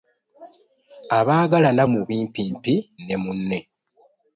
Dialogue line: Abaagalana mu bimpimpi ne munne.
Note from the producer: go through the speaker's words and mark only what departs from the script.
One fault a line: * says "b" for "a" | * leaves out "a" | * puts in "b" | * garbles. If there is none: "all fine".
all fine